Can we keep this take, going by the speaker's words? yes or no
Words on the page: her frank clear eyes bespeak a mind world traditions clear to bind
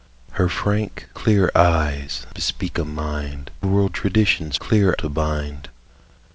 yes